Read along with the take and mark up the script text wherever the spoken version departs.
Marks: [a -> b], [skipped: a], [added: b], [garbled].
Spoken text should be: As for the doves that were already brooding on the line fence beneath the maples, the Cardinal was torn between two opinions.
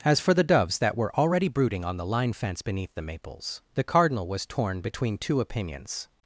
As for the doves that were already brooding on the line fence beneath the maples, the Cardinal was torn between two opinions.